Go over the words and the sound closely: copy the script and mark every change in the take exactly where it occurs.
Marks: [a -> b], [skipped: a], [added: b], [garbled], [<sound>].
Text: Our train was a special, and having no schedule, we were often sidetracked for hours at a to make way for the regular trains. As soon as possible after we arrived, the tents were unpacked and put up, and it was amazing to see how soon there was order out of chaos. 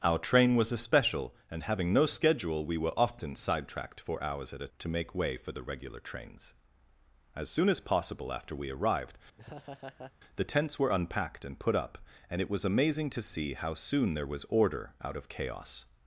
Our train was a special, and having no schedule, we were often sidetracked for hours at a to make way for the regular trains. As soon as possible after we arrived, [laugh] the tents were unpacked and put up, and it was amazing to see how soon there was order out of chaos.